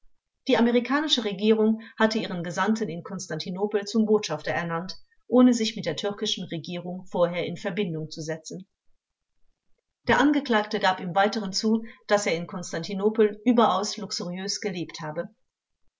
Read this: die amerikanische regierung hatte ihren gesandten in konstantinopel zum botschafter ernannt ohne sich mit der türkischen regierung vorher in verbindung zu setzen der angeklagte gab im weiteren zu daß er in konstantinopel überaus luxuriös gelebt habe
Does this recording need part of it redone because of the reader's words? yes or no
no